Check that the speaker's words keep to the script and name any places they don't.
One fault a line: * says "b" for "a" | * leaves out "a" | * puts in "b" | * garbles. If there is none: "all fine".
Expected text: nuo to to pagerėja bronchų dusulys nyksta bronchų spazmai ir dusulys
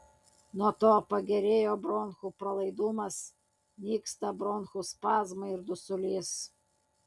* leaves out "to"
* says "pralaidumas" for "dusulys"